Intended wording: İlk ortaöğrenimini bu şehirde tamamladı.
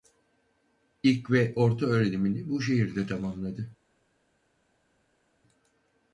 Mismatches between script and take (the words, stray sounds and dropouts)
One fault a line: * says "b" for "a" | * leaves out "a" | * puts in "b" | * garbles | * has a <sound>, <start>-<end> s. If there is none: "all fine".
* puts in "ve"